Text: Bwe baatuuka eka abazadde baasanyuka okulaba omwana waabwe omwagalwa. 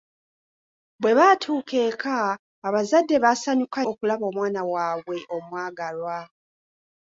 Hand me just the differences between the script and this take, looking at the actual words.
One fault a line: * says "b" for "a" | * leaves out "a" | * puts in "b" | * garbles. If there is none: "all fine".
all fine